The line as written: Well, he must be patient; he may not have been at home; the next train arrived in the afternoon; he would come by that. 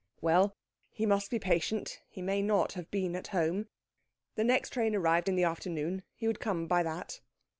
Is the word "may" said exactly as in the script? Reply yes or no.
yes